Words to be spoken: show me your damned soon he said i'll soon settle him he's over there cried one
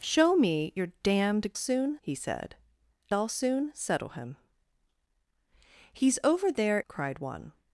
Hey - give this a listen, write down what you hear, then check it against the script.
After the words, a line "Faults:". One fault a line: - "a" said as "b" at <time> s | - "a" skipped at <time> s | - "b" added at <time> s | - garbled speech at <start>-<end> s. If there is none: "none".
show me your damned soon he said i'll soon settle him he's over there cried one
Faults:
none